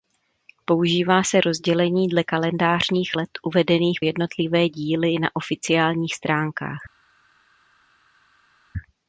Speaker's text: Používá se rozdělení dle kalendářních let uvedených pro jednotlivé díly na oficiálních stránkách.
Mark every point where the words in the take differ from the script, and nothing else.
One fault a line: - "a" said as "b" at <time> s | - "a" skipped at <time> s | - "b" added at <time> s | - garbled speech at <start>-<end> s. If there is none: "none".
- "pro" skipped at 4.0 s